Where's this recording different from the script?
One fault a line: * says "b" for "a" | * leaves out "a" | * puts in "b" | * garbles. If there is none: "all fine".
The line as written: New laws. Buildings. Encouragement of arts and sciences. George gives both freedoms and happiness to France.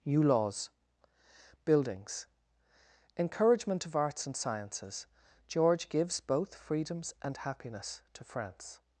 all fine